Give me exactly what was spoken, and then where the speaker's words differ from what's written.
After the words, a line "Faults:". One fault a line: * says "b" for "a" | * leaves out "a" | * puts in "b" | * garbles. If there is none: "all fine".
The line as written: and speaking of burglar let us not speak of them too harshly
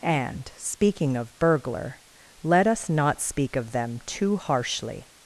and speaking of burglar let us not speak of them too harshly
Faults:
all fine